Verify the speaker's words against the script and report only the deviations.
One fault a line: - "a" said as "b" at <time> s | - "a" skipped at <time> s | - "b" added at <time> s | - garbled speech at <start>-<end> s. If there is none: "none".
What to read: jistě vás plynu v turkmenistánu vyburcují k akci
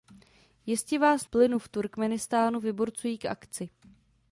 none